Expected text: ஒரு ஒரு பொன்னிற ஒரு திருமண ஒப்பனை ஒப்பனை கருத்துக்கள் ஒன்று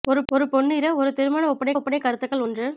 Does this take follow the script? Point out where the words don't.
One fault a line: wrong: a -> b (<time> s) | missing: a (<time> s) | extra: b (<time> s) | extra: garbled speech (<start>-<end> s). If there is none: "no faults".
no faults